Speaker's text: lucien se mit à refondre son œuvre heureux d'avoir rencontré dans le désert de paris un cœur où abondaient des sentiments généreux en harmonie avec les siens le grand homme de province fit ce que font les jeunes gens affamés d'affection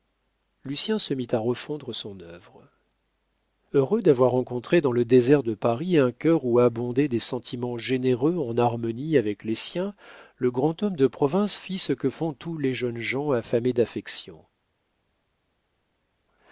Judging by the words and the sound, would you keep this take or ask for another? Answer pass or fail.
fail